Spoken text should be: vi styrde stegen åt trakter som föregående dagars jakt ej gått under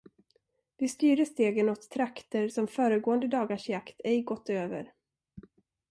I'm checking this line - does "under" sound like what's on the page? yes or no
no